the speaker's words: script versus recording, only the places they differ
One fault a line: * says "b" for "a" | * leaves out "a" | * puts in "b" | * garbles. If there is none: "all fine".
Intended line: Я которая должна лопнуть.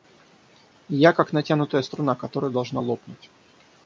* puts in "как натянутая струна"